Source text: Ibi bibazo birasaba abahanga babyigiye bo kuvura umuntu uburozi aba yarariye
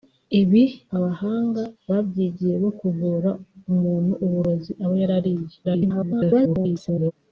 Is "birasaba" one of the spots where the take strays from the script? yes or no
yes